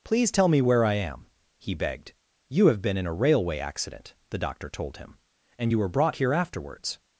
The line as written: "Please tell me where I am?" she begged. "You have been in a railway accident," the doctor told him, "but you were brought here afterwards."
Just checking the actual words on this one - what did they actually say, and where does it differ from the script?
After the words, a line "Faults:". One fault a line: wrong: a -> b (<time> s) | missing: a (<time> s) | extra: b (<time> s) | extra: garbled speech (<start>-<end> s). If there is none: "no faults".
"Please tell me where I am?" he begged. "You have been in a railway accident," the doctor told him, "and you were brought here afterwards."
Faults:
wrong: she -> he (1.6 s)
wrong: but -> and (5.6 s)